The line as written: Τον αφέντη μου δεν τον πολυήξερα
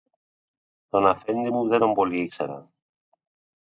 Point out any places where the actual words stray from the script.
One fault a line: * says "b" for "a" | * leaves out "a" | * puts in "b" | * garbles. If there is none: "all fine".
all fine